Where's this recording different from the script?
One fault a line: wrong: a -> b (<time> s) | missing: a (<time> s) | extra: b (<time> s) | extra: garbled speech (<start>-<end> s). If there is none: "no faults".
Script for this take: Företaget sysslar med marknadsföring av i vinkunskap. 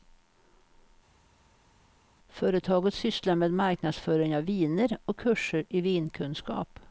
extra: viner och kurser (4.4 s)